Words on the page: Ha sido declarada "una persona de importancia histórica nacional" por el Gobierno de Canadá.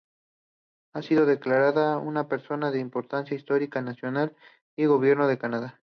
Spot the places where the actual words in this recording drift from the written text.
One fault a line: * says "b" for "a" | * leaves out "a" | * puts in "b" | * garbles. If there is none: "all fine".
all fine